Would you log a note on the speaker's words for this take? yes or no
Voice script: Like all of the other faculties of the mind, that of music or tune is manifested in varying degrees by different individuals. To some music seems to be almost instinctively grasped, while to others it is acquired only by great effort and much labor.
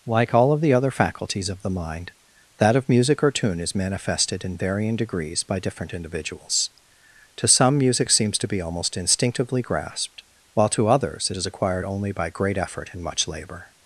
no